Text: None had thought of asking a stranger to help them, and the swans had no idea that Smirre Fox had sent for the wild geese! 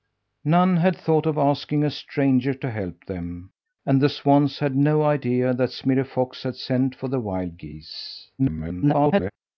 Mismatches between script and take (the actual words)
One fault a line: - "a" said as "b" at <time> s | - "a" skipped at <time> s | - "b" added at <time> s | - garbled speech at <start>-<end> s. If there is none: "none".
- garbled speech at 8.4-9.3 s